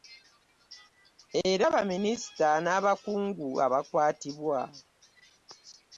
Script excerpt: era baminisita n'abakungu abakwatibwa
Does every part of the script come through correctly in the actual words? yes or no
yes